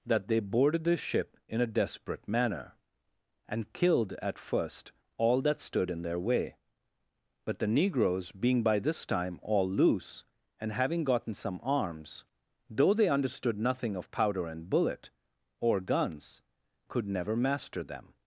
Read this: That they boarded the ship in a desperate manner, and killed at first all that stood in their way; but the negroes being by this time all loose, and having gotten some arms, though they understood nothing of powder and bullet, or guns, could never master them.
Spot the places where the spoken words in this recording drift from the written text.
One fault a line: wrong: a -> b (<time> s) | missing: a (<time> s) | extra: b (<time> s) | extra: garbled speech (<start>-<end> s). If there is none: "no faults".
no faults